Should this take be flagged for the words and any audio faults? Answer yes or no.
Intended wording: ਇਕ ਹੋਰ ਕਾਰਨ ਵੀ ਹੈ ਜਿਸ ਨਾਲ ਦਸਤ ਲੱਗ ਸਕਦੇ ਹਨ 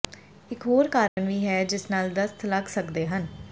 yes